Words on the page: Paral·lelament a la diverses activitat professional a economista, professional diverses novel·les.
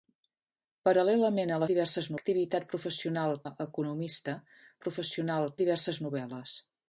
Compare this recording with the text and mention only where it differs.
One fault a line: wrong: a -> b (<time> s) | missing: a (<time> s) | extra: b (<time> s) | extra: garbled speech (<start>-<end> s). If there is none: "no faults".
no faults